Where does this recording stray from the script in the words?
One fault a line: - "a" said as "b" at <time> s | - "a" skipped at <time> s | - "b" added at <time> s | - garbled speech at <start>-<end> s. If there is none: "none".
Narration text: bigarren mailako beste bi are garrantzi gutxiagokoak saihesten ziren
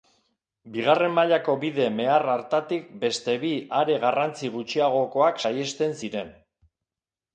- "bide mehar hartatik" added at 1.6 s